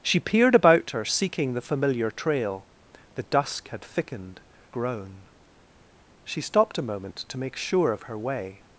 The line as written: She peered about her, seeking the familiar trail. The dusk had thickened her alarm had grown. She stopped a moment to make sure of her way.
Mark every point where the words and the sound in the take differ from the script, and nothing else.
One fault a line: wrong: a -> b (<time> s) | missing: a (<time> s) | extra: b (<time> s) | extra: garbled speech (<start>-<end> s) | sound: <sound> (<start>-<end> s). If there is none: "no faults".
missing: her alarm had (4.4 s)